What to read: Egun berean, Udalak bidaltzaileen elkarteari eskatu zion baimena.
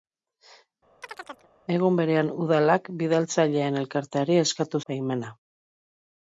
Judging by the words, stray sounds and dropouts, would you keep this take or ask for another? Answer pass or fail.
fail